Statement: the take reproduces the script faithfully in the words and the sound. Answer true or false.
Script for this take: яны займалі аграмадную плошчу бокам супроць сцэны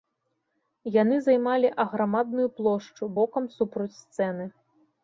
true